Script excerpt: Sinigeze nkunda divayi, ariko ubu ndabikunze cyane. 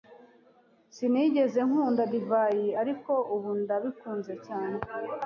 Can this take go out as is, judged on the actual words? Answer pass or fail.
pass